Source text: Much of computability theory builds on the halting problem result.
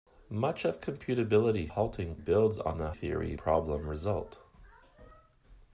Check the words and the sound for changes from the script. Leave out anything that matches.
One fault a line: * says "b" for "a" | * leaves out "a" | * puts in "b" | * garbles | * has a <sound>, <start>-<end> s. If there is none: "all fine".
* says "halting" for "theory"
* says "theory" for "halting"